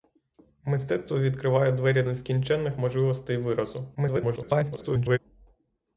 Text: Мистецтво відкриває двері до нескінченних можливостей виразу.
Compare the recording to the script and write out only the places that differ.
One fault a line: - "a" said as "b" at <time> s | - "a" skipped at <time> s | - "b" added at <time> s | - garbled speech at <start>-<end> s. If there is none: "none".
- "до" skipped at 2.0 s
- garbled speech at 3.9-5.2 s